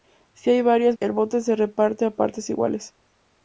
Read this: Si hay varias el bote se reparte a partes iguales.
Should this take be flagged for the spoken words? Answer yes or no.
no